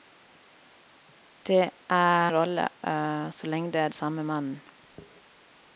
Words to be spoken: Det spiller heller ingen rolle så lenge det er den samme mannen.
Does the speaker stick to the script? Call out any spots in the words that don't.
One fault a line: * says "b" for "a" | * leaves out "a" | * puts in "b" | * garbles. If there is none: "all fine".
* leaves out "spiller heller ingen"
* leaves out "den"